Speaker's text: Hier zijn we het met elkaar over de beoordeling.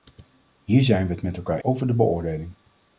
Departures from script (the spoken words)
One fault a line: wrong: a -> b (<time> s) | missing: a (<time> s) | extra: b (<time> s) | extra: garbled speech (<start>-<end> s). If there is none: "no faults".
no faults